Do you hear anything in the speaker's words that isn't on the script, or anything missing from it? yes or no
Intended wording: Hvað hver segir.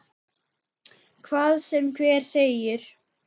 yes